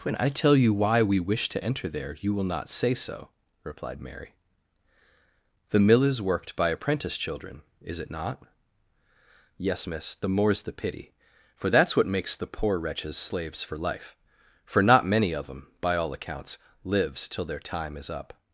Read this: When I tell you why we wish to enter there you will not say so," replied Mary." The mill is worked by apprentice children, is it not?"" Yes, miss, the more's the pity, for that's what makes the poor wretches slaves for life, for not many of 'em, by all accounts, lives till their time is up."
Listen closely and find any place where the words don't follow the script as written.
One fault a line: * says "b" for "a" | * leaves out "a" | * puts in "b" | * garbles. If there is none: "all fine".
all fine